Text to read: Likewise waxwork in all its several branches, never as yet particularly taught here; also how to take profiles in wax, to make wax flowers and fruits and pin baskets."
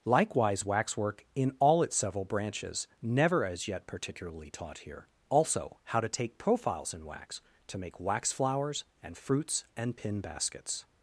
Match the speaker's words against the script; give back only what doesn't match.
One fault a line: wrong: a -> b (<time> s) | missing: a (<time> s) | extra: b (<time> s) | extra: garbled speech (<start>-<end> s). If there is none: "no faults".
no faults